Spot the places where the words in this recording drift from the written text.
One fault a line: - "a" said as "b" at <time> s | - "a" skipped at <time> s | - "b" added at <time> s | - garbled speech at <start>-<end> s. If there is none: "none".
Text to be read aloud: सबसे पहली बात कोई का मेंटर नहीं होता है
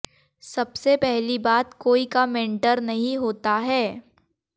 none